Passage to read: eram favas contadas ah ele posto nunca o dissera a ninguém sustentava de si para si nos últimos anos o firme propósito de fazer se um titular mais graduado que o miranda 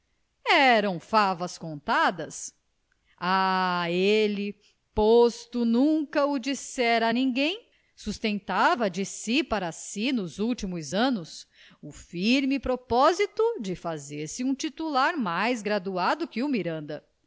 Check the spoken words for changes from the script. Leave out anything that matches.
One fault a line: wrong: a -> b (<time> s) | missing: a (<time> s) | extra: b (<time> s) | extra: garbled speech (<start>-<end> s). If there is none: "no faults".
no faults